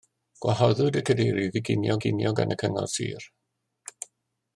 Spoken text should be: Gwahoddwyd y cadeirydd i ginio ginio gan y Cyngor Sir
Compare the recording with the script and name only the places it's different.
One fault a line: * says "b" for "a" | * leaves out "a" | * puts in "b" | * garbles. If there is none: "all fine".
all fine